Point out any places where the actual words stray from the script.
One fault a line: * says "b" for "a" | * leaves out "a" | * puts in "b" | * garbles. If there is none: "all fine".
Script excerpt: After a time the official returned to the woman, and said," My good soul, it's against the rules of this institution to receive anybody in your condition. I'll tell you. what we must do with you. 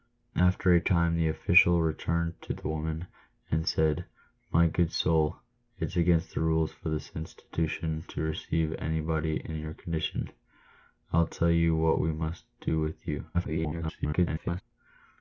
* garbles